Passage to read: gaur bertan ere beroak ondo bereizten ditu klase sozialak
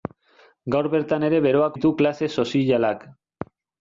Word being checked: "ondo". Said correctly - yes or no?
no